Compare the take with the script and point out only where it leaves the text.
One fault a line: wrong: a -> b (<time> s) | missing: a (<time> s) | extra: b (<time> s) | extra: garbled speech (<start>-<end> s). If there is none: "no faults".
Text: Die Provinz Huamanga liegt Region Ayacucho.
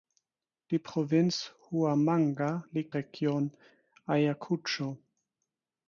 no faults